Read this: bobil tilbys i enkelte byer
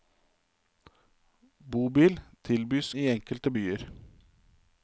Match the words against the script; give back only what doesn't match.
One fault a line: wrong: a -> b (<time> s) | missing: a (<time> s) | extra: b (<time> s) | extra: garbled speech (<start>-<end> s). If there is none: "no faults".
no faults